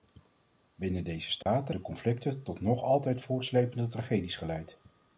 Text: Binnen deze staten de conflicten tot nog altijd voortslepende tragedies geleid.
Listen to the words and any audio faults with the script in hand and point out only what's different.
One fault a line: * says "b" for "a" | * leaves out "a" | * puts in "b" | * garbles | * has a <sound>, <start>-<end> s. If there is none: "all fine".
* has a dropout, 1.4-1.5 s